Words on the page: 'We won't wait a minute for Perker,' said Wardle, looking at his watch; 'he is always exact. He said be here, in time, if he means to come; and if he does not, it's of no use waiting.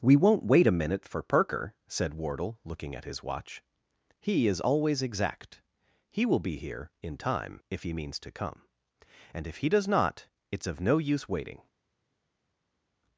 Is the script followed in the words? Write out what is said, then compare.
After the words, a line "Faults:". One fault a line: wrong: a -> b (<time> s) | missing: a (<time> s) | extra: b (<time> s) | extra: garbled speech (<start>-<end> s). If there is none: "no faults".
'We won't wait a minute for Perker,' said Wardle, looking at his watch; 'he is always exact. He will be here, in time, if he means to come; and if he does not, it's of no use waiting.
Faults:
wrong: said -> will (6.2 s)